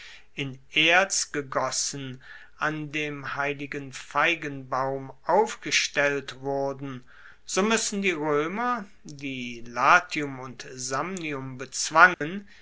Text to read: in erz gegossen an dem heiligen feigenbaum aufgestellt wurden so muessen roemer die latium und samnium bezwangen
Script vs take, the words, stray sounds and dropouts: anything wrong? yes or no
yes